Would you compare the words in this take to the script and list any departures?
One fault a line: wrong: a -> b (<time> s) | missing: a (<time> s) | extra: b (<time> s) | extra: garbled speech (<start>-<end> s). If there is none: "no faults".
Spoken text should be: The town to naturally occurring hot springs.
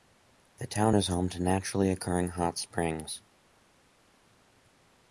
extra: is home (0.9 s)